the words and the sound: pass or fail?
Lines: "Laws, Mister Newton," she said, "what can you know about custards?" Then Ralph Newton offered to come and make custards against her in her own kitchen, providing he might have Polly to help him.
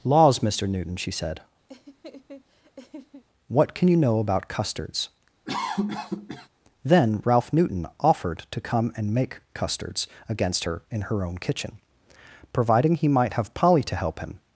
fail